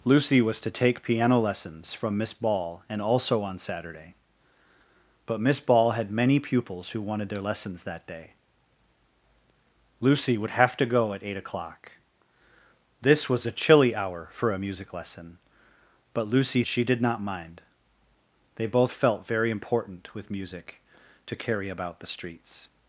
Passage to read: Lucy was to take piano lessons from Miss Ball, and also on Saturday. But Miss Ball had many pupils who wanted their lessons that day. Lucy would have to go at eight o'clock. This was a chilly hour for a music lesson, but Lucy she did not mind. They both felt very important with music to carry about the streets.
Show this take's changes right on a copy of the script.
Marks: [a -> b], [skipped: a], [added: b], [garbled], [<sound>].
Lucy was to take piano lessons from Miss Ball, and also on Saturday. But Miss Ball had many pupils who wanted their lessons that day. Lucy would have to go at eight o'clock. This was a chilly hour for a music lesson, but Lucy she did not mind. They both felt very important with music to carry about the streets.